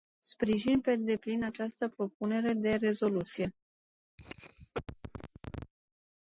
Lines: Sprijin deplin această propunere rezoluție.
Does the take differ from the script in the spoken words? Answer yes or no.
yes